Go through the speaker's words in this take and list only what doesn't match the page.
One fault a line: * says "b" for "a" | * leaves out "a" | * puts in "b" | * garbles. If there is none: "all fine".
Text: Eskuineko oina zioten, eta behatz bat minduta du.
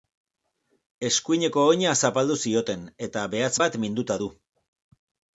* puts in "zapaldu"